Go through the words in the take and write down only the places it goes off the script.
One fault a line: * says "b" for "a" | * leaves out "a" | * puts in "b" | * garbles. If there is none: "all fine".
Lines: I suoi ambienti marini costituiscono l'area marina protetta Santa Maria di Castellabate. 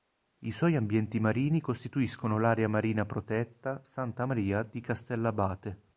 all fine